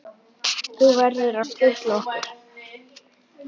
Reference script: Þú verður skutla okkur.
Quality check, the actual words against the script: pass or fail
fail